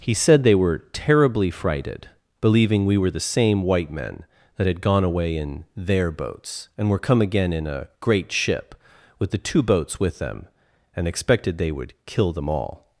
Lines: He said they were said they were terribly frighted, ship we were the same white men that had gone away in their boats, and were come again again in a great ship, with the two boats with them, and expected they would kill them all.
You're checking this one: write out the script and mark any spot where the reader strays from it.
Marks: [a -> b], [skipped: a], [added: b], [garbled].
He said they were [skipped: said they were] terribly frighted, [ship -> believing] we were the same white men that had gone away in their boats, and were come again [skipped: again] in a great ship, with the two boats with them, and expected they would kill them all.